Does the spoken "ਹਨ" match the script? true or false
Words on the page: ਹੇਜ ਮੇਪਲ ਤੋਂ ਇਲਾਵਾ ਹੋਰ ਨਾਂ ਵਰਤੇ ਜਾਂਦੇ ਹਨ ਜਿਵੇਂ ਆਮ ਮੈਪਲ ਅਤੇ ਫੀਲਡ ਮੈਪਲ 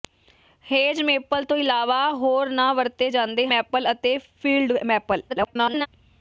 false